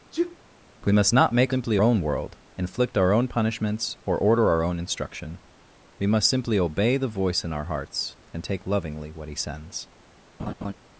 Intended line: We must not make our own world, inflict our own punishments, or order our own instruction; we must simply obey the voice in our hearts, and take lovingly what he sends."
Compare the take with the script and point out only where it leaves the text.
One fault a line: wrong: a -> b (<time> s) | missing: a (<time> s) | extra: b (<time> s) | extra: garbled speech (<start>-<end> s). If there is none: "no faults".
wrong: our -> simply (1.5 s)